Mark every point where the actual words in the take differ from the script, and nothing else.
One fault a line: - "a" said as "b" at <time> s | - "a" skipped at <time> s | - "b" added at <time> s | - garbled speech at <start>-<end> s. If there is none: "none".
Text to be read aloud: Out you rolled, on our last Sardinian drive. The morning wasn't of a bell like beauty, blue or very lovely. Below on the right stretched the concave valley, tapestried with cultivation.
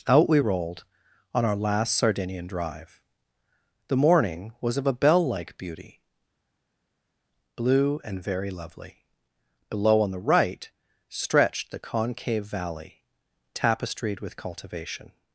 - "you" said as "we" at 0.3 s
- "wasn't" said as "was" at 4.6 s
- "or" said as "and" at 8.0 s